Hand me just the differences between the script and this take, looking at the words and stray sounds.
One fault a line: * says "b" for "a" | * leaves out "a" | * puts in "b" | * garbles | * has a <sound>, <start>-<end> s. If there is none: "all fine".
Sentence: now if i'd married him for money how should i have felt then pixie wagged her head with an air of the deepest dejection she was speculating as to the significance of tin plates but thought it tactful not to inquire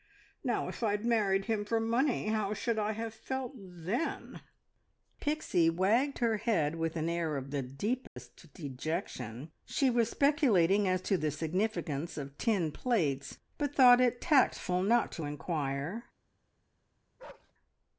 * has a dropout, 8.1-8.2 s
* has a bark, 17.2-17.5 s